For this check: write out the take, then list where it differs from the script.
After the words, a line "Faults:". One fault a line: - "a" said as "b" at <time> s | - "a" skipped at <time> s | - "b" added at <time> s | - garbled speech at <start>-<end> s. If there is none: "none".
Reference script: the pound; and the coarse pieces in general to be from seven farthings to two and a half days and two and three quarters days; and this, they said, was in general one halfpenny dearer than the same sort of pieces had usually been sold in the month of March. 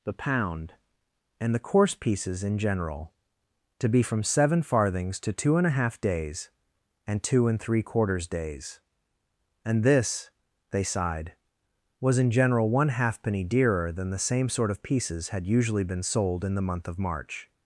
the pound; and the coarse pieces in general to be from seven farthings to two and a half days and two and three quarters days; and this, they sighed, was in general one halfpenny dearer than the same sort of pieces had usually been sold in the month of March.
Faults:
- "said" said as "sighed" at 10.8 s